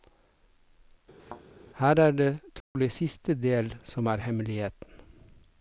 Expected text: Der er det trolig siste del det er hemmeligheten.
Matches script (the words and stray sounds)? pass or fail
fail